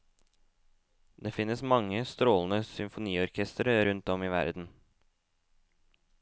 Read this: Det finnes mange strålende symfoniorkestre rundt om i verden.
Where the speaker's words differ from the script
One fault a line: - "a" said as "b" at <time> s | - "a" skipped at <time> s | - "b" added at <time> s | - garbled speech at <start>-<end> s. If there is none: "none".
none